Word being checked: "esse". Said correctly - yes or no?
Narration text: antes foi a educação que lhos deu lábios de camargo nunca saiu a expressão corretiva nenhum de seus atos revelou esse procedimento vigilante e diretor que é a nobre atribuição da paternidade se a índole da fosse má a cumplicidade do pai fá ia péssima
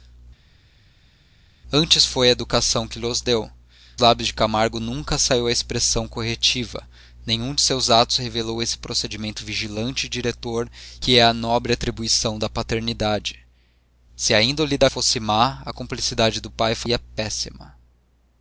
yes